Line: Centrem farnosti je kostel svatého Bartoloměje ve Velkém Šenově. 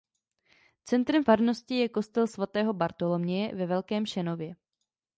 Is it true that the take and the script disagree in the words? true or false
false